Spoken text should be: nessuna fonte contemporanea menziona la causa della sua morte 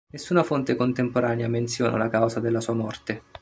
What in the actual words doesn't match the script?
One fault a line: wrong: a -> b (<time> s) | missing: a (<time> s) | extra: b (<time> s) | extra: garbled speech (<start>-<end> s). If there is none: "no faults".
no faults